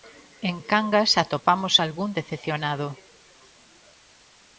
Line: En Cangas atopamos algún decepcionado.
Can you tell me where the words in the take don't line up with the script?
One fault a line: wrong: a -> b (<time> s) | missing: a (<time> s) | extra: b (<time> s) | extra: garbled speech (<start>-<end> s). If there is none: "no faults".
no faults